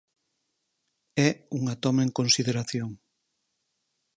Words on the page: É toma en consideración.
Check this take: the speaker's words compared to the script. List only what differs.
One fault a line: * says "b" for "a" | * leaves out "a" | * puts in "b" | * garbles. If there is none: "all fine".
* puts in "unha"